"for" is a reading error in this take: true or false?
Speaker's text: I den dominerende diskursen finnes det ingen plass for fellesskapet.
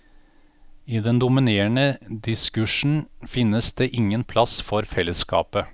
false